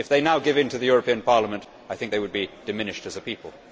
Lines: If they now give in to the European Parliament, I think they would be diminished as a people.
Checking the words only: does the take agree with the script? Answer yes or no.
yes